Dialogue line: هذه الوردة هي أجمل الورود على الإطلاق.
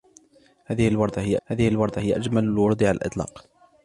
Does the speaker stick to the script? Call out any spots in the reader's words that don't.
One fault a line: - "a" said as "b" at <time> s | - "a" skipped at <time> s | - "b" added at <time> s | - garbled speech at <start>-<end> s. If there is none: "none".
- "هذه الوردة هي" added at 1.5 s